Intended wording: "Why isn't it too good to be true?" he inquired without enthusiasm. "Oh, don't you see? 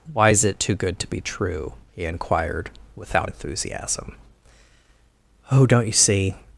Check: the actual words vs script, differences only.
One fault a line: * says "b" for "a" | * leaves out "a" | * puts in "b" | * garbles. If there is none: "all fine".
* says "is" for "isn't"